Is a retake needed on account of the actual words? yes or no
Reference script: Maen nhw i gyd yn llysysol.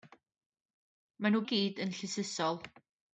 no